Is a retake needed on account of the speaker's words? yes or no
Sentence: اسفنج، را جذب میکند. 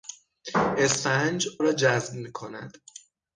no